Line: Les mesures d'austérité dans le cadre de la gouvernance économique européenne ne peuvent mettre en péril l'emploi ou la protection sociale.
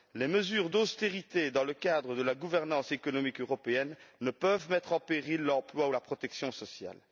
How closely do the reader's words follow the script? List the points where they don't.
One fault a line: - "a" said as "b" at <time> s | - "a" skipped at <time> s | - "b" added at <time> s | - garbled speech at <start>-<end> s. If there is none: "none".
none